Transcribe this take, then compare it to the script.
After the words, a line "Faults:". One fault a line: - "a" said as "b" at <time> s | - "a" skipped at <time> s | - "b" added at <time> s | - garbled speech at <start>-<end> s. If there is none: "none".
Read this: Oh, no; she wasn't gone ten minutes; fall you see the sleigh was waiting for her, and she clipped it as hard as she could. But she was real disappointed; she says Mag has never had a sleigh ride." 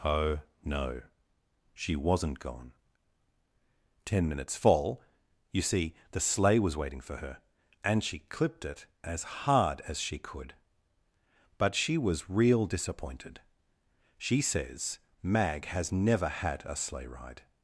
Oh, no; she wasn't gone ten minutes; fall you see the sleigh was waiting for her, and she clipped it as hard as she could. But she was real disappointed; she says Mag has never had a sleigh ride."
Faults:
none